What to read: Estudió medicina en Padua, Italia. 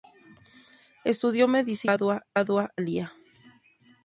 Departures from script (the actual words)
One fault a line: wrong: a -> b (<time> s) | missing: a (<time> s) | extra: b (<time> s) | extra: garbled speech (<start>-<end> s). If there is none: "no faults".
no faults